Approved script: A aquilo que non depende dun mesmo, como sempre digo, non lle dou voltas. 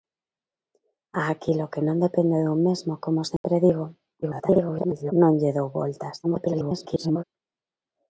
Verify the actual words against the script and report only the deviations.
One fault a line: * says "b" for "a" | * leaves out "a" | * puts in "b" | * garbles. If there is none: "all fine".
* garbles
* garbles